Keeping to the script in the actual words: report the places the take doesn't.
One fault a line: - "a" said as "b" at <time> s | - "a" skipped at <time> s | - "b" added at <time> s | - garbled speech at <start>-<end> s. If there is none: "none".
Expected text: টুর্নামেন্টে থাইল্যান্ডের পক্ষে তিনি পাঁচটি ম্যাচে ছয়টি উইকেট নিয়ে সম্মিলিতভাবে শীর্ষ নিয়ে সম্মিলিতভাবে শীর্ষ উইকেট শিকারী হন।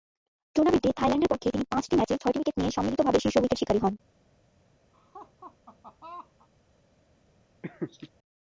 - "নিয়ে সম্মিলিতভাবে শীর্ষ" skipped at 3.4 s